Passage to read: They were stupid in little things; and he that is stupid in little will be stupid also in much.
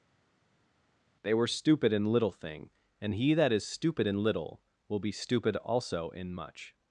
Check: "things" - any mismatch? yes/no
yes